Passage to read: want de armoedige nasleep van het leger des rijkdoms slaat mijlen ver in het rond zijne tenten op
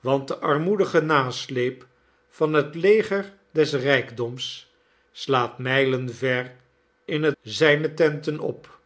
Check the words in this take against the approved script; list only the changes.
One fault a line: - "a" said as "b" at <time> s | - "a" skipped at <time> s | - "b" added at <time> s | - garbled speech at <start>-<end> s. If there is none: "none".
- "rond" skipped at 7.4 s